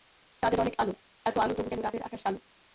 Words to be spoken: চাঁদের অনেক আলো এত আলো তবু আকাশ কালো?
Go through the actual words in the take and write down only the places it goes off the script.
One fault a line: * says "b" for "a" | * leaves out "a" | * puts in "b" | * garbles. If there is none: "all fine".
* puts in "কেন রাতের"